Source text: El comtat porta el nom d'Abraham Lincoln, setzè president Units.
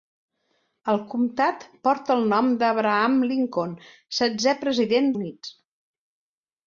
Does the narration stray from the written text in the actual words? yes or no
no